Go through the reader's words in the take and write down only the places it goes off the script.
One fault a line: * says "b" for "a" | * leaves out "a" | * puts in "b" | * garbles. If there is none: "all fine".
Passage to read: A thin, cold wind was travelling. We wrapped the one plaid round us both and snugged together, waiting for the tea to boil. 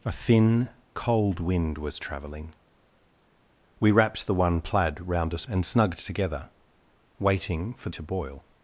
* leaves out "both"
* leaves out "the tea"